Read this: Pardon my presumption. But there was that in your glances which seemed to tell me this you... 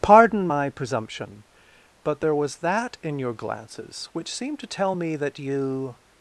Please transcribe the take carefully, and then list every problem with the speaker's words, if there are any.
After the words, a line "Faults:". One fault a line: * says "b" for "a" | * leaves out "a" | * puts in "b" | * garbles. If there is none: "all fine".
Pardon my presumption. But there was that in your glances which seemed to tell me that you...
Faults:
* says "that" for "this"